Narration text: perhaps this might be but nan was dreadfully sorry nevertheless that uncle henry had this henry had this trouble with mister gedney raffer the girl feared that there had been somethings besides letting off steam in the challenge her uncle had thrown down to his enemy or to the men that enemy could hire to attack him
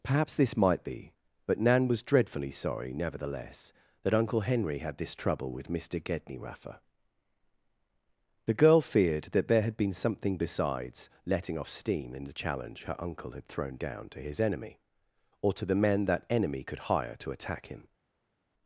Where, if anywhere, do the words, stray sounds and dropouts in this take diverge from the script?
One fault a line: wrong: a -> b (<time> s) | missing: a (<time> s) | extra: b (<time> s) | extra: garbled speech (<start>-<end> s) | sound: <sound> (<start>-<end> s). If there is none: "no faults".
missing: henry had this (5.1 s)
wrong: somethings -> something (9.9 s)